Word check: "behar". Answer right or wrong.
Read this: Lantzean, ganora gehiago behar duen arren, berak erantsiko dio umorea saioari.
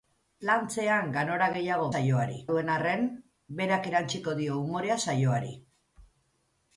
wrong